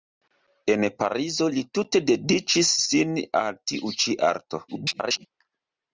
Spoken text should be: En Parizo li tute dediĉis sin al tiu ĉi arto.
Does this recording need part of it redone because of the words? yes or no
yes